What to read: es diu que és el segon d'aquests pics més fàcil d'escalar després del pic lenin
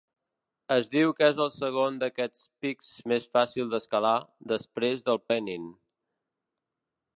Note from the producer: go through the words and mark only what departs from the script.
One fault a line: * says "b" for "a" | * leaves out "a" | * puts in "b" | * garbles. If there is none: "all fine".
* leaves out "pic"